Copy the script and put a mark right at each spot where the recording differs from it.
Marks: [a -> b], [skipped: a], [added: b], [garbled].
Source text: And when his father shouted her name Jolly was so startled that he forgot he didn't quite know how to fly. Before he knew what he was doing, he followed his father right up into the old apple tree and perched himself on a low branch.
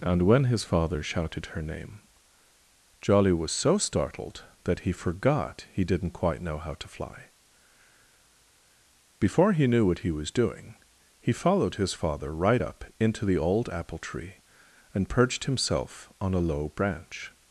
And when his father shouted her name Jolly was so startled that he forgot he didn't quite know how to fly. Before he knew what he was doing, he followed his father right up into the old apple tree and perched himself on a low branch.